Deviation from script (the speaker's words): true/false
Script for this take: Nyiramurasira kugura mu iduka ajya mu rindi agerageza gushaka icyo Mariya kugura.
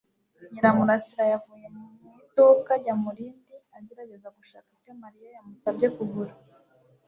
true